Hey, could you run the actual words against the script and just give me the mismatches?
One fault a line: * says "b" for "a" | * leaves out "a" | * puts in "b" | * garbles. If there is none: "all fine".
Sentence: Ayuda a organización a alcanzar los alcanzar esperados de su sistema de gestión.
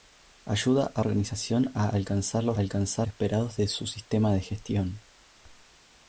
all fine